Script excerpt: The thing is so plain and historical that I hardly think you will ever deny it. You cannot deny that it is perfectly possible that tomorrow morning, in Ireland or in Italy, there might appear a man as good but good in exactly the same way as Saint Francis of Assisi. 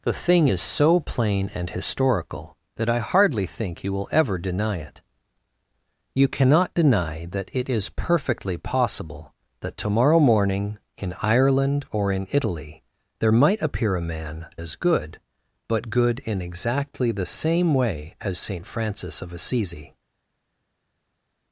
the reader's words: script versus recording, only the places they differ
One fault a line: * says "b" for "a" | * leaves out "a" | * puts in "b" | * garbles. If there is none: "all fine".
all fine